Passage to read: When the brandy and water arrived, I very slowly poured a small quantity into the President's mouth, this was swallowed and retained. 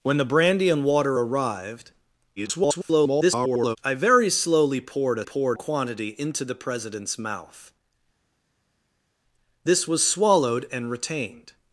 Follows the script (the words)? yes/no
no